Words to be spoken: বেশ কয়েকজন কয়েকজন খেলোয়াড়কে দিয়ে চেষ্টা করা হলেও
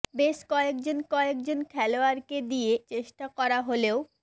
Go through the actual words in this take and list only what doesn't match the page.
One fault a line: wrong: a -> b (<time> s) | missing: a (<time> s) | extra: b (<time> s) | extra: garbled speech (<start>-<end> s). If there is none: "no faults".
no faults